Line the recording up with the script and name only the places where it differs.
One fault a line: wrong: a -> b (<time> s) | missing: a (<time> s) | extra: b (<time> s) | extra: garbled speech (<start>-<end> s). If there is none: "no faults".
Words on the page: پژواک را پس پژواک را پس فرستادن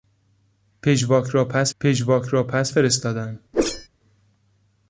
no faults